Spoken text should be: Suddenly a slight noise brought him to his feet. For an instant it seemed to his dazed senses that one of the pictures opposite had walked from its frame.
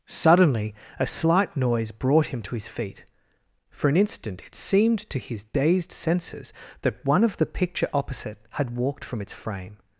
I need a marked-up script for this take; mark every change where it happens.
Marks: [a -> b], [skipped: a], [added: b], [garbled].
Suddenly a slight noise brought him to his feet. For an instant it seemed to his dazed senses that one of the [pictures -> picture] opposite had walked from its frame.